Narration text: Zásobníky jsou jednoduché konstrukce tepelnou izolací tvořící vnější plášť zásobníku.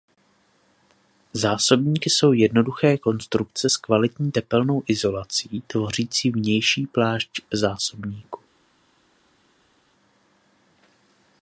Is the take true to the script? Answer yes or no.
no